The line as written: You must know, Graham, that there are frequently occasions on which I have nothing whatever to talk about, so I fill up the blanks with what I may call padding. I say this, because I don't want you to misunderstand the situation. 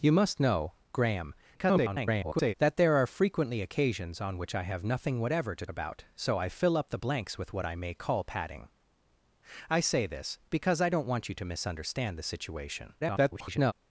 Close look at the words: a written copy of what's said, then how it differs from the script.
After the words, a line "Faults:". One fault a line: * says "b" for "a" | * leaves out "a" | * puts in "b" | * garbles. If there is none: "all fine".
You must know, Graham, [garbled] that there are frequently occasions on which I have nothing whatever to about, so I fill up the blanks with what I may call padding. I say this, because I don't want you to misunderstand the situation. [garbled]
Faults:
* garbles
* leaves out "talk"
* garbles